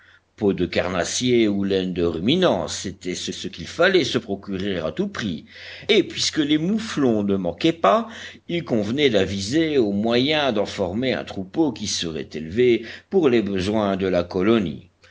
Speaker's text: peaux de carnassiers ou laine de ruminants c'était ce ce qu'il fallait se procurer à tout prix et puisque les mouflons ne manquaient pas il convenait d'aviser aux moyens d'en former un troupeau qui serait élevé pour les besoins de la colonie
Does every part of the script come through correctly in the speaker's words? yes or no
yes